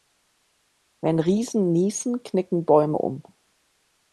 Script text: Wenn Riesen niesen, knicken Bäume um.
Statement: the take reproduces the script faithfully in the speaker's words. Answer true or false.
true